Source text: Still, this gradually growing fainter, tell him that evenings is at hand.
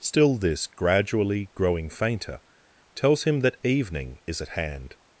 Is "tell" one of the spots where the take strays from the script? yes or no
yes